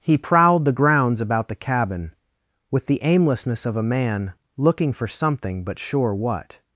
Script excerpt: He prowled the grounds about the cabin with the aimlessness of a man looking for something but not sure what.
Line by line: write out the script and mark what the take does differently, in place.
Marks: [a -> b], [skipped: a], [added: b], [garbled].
He prowled the grounds about the cabin with the aimlessness of a man looking for something but [skipped: not] sure what.